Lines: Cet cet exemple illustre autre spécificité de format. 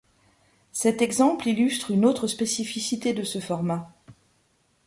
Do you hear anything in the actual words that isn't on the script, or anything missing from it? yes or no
yes